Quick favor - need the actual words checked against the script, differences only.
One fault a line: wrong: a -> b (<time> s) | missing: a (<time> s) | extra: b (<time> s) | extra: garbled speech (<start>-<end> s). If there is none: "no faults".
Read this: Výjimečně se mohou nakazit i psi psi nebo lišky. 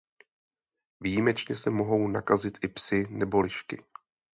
missing: psi (3.1 s)